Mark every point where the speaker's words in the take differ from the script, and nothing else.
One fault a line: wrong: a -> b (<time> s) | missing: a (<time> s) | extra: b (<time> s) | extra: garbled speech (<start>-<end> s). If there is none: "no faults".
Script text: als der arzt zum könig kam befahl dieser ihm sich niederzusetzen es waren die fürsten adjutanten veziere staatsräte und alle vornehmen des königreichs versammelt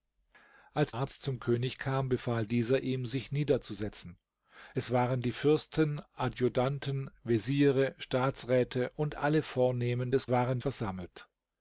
missing: der (0.9 s)
wrong: königreichs -> waren (10.3 s)